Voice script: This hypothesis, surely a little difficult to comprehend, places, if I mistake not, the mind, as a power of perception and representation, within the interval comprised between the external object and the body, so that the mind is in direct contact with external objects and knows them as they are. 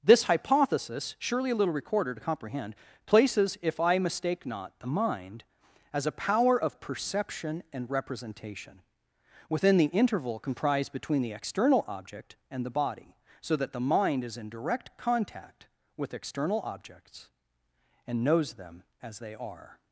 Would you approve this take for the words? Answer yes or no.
no